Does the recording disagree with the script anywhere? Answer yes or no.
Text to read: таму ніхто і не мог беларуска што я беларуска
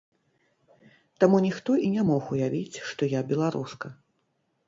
yes